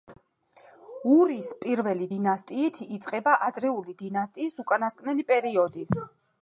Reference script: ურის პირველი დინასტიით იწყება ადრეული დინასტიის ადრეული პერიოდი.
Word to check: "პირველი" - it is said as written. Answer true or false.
true